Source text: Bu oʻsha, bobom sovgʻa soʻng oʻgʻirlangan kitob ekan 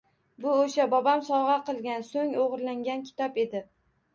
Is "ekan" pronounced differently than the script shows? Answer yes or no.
yes